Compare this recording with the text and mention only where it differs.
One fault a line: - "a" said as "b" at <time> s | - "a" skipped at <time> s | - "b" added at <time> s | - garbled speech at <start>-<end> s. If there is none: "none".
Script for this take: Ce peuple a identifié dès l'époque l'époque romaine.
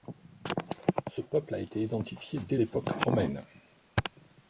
- "été" added at 1.6 s
- "l'époque" skipped at 2.9 s